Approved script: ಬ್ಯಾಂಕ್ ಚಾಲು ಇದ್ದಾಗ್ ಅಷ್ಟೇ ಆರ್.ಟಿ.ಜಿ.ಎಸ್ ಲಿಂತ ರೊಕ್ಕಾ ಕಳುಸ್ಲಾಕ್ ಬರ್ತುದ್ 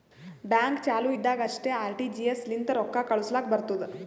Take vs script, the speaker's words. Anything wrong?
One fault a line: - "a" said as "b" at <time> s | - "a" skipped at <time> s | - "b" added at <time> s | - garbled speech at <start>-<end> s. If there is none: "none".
none